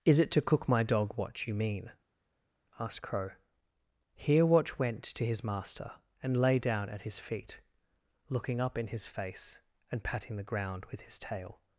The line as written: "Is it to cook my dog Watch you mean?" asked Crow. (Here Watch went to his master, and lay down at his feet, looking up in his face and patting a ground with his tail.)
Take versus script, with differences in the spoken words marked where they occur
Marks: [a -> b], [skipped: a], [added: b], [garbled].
"Is it to cook my dog Watch you mean?" asked Crow. (Here Watch went to his master, and lay down at his feet, looking up in his face and patting [a -> the] ground with his tail.)